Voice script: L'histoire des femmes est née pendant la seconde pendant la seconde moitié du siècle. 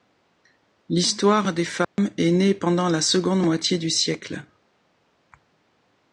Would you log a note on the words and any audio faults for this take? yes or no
yes